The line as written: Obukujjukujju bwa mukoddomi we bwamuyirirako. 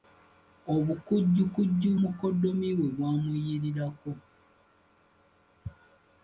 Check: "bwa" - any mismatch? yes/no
yes